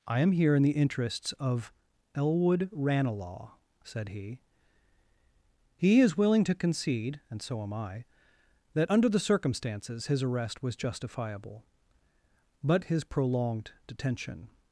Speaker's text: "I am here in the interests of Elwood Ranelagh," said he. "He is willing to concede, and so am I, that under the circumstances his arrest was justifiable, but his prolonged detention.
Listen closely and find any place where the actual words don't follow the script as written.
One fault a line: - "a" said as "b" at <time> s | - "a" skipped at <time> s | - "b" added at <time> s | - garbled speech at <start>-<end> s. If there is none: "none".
none